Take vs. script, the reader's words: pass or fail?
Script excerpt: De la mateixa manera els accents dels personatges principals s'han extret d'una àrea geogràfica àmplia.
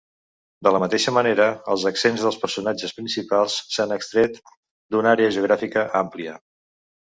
pass